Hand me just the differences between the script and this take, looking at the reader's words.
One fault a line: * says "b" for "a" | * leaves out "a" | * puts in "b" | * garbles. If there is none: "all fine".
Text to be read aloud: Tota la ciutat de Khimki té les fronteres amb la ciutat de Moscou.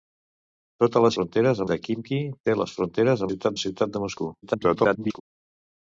* says "fronteres" for "ciutat"
* says "ciutat" for "amb"
* garbles